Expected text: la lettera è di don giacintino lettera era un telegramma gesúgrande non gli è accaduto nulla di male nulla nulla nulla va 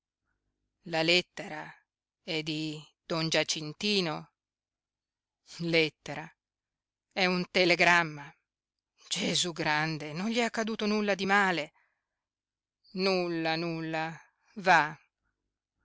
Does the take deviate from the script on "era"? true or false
true